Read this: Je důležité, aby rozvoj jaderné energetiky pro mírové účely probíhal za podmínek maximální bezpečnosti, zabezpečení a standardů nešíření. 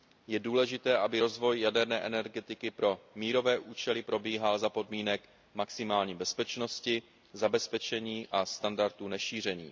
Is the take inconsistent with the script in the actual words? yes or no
no